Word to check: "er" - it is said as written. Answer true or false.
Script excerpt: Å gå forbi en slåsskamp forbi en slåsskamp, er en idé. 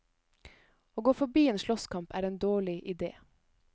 false